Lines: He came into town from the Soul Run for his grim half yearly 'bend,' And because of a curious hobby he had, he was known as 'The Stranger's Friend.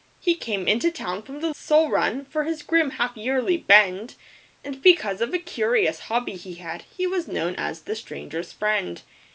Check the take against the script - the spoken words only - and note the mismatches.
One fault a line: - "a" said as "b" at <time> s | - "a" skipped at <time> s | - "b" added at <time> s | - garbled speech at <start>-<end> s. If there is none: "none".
none